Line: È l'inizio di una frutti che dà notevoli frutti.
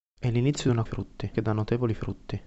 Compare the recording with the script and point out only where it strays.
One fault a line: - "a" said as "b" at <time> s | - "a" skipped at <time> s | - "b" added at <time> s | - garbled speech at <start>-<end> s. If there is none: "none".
none